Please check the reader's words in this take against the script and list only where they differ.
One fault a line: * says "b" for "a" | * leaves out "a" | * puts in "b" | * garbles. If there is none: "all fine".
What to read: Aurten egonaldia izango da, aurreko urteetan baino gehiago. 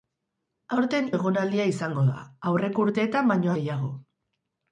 all fine